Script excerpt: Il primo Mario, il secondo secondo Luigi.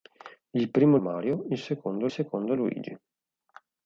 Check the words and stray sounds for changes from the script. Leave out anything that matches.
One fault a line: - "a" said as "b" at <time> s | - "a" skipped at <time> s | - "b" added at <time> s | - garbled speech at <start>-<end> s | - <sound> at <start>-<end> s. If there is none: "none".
none